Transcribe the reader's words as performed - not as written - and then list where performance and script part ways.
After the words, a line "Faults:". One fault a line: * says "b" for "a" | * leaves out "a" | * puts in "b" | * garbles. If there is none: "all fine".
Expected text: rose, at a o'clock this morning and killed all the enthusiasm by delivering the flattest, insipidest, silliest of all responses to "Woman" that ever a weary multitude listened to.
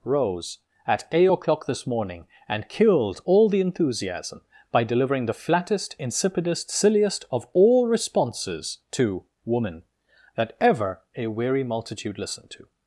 rose, at eight o'clock this morning and killed all the enthusiasm by delivering the flattest, insipidest, silliest of all responses to "Woman" that ever a weary multitude listened to.
Faults:
* says "eight" for "a"